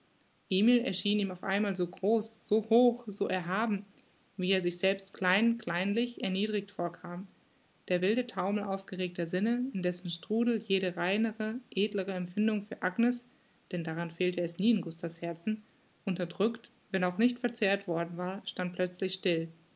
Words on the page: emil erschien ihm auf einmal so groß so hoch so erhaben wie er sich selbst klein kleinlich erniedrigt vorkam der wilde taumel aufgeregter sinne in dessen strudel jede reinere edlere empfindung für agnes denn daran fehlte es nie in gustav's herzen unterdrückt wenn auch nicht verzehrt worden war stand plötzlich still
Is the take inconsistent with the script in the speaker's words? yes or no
no